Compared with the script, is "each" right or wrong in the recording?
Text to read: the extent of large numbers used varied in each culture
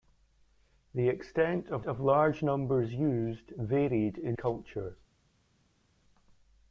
wrong